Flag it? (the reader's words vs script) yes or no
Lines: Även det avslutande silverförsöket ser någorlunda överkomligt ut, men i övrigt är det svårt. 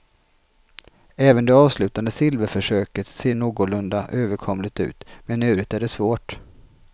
no